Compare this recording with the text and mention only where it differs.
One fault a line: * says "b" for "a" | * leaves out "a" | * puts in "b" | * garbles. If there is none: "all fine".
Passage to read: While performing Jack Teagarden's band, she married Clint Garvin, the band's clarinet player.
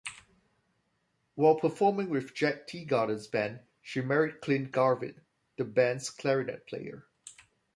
* puts in "with"